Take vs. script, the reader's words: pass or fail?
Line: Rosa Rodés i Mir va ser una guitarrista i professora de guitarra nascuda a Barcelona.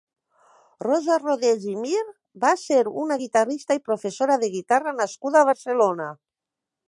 pass